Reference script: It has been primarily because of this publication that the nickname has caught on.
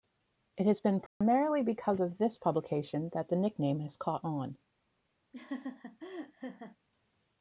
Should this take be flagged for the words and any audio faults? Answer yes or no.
yes